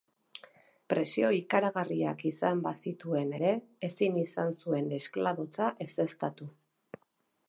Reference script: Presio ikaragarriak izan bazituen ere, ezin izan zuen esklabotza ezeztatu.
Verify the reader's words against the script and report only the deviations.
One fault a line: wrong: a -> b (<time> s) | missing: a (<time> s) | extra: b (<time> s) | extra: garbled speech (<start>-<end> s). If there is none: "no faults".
no faults